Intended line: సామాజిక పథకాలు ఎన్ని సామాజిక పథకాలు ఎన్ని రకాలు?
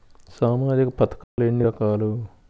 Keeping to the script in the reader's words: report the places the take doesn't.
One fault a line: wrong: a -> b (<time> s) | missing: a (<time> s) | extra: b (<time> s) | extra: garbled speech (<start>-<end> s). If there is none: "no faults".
missing: సామాజిక పథకాలు ఎన్ని (1.6 s)